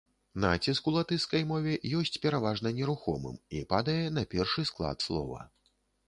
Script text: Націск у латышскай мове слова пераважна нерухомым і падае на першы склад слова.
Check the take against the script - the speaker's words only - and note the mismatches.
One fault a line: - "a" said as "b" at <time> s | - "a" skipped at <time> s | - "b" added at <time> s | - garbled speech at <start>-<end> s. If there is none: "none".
- "слова" said as "ёсць" at 2.0 s